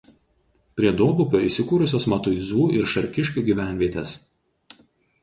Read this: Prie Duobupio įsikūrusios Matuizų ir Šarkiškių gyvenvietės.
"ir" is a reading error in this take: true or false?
false